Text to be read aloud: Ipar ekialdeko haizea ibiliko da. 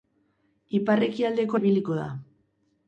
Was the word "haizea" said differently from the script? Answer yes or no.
yes